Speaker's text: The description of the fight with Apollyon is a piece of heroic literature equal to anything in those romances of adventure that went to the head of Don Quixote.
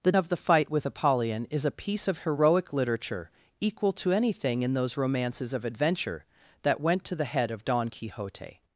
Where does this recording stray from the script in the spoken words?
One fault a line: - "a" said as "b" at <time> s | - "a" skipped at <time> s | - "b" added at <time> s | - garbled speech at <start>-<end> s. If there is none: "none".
- "description" skipped at 0.1 s